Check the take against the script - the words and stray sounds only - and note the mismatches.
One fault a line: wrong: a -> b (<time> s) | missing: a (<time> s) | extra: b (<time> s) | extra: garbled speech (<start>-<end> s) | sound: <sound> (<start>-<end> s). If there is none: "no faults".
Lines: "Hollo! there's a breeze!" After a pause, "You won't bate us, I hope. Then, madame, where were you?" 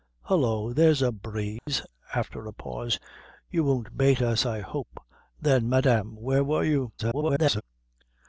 sound: dropout (1.6-1.7 s)
extra: garbled speech (7.0-7.6 s)